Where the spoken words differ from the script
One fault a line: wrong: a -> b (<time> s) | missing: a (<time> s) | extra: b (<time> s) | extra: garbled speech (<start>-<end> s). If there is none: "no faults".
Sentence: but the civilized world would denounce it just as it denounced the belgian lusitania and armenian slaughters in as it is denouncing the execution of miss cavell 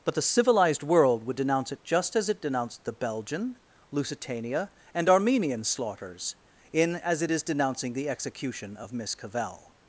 no faults